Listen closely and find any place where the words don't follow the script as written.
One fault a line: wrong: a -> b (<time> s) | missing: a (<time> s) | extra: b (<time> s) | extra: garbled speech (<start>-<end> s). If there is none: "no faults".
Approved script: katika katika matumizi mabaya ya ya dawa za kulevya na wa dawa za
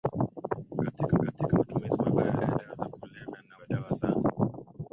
no faults